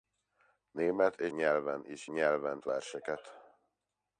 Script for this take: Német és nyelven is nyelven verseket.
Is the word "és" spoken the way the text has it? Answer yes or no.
yes